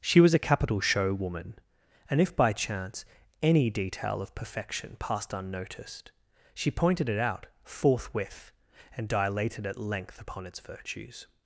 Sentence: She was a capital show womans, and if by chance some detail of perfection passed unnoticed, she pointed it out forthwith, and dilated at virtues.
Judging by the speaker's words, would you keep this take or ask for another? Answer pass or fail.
fail